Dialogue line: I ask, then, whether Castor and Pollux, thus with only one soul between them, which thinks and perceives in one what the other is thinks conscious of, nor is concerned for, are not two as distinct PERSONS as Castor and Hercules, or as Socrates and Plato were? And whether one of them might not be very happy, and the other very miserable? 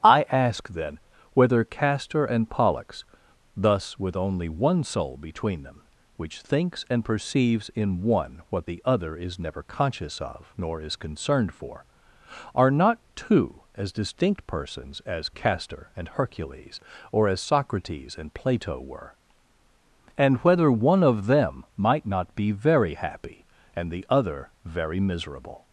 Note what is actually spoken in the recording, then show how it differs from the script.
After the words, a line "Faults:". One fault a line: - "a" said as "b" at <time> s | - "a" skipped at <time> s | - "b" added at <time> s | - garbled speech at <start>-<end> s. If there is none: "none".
I ask, then, whether Castor and Pollux, thus with only one soul between them, which thinks and perceives in one what the other is never conscious of, nor is concerned for, are not two as distinct PERSONS as Castor and Hercules, or as Socrates and Plato were? And whether one of them might not be very happy, and the other very miserable?
Faults:
- "thinks" said as "never" at 9.4 s